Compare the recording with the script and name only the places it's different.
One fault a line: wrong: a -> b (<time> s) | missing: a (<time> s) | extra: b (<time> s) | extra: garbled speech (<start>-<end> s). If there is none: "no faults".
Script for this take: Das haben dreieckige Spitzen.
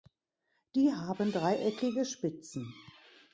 wrong: Das -> Die (0.7 s)